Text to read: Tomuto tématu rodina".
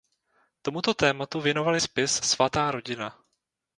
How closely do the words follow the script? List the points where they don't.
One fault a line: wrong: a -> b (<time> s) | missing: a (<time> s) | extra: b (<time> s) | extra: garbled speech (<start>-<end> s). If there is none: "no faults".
extra: věnovali spis Svatá (1.4 s)